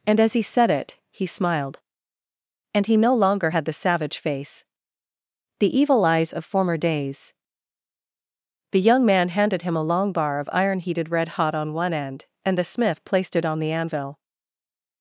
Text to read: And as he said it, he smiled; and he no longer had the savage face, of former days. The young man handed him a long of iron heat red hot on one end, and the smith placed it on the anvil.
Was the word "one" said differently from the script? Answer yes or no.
no